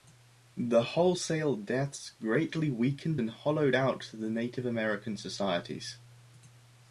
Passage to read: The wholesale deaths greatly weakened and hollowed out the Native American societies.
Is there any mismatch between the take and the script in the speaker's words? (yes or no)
no